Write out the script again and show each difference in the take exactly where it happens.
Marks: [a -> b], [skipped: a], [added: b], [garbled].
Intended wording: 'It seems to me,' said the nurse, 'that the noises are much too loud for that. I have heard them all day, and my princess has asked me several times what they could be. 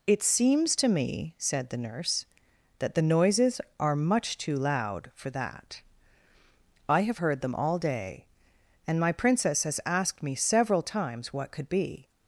'It seems to me,' said the nurse, 'that the noises are much too loud for that. I have heard them all day, and my princess has asked me several times what [skipped: they] could be.